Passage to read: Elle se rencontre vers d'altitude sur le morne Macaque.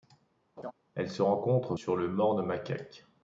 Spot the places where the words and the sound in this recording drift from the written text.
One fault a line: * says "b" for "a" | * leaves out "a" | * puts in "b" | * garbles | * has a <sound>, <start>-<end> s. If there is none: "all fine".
* has a laugh, 0.6-0.7 s
* leaves out "vers d'altitude"